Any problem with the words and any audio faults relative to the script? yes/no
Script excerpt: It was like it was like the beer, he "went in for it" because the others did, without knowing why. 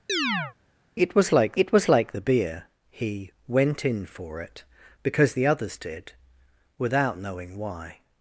yes